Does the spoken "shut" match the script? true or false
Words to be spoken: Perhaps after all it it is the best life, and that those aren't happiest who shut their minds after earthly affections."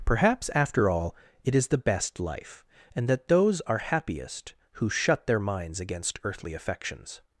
true